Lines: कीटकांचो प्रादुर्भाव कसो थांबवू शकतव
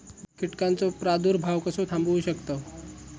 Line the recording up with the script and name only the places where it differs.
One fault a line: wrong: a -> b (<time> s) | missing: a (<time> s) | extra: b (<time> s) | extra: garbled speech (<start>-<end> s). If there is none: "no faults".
no faults